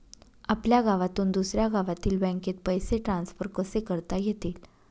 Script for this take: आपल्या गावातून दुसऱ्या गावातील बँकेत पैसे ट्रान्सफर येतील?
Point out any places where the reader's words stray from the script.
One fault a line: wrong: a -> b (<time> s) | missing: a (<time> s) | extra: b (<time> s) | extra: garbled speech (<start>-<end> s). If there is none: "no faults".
extra: कसे करता (3.5 s)